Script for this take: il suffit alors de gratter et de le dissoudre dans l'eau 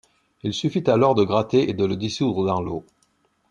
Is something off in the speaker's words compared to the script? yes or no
no